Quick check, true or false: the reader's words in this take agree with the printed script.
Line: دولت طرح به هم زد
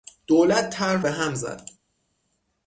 true